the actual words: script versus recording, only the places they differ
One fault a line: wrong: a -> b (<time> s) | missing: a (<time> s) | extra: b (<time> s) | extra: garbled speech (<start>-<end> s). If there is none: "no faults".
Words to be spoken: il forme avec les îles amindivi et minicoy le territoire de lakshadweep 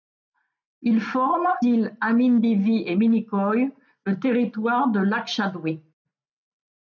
missing: avec les (1.5 s)